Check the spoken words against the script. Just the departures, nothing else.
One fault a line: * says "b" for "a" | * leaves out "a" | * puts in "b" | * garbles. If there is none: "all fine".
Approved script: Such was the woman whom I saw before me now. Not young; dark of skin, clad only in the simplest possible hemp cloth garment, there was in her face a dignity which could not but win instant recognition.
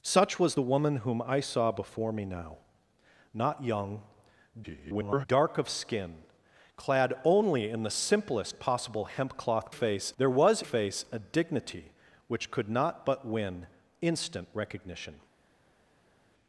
* garbles
* says "face" for "garment"
* leaves out "in her"